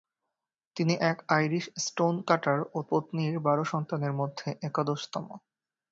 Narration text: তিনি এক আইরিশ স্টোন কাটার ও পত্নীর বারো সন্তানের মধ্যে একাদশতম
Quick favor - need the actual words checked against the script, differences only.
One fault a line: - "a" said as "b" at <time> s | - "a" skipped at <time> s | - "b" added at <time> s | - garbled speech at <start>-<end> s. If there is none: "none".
none